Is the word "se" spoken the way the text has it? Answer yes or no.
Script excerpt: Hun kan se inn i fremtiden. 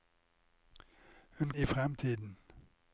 no